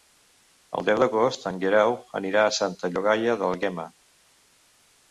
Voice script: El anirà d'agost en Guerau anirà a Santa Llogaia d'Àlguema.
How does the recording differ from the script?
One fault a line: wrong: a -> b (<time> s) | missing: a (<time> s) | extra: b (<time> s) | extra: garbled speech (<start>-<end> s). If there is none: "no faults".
wrong: anirà -> deu (0.9 s)